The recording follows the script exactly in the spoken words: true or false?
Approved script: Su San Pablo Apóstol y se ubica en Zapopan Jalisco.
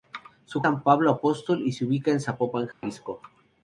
true